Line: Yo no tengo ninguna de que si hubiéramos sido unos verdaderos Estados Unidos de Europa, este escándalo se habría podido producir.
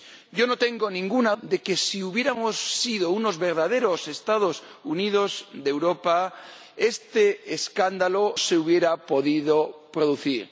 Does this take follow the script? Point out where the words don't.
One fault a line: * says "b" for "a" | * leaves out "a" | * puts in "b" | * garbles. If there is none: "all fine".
all fine